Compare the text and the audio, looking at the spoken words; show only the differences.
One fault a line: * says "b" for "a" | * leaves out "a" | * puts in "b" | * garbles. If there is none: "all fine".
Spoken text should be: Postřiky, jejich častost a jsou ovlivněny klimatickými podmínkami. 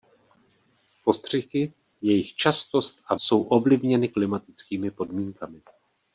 all fine